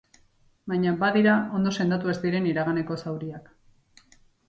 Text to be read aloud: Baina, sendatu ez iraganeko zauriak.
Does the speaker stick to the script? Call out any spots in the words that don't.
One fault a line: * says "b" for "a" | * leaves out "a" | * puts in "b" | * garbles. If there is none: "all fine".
* puts in "badira ondo"
* puts in "diren"